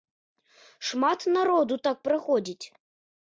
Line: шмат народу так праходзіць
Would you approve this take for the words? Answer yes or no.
yes